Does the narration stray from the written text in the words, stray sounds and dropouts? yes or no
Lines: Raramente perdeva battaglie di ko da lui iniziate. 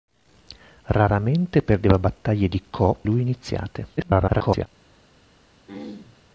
yes